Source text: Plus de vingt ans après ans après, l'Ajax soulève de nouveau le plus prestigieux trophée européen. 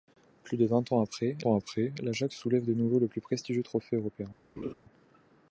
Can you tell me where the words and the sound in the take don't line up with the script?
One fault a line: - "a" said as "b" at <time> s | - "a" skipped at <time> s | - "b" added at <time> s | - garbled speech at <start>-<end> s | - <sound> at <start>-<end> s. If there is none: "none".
- laugh at 4.6-4.7 s